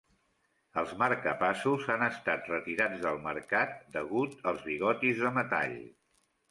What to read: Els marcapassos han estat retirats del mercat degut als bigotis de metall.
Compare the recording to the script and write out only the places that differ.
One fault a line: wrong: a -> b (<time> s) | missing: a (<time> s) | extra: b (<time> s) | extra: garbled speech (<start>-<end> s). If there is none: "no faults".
no faults